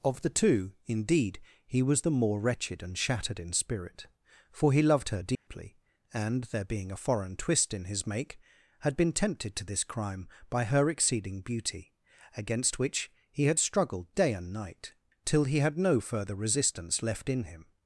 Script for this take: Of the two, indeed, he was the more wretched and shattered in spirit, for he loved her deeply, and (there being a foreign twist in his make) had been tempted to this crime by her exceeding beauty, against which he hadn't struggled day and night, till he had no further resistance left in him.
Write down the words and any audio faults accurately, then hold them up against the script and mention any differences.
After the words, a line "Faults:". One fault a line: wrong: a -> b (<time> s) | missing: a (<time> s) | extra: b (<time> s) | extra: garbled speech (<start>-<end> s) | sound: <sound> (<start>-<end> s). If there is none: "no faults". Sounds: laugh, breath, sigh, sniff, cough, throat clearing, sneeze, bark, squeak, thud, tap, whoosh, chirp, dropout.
Of the two, indeed, he was the more wretched and shattered in spirit, for he loved her deeply, and (there being a foreign twist in his make) had been tempted to this crime by her exceeding beauty, against which he had struggled day and night, till he had no further resistance left in him.
Faults:
sound: dropout (5.3-5.5 s)
wrong: hadn't -> had (13.5 s)